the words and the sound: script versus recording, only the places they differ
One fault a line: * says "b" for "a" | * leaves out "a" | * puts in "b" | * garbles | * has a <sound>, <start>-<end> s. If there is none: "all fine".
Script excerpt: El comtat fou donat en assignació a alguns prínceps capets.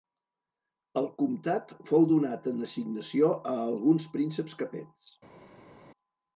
all fine